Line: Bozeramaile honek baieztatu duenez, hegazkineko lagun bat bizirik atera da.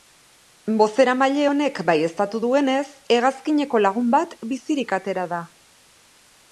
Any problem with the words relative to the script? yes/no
no